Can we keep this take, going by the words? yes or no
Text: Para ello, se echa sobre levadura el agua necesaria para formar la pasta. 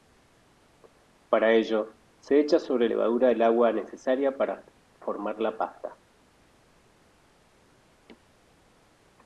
yes